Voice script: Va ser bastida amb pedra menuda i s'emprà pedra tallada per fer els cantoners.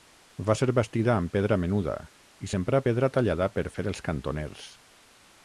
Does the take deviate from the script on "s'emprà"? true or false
false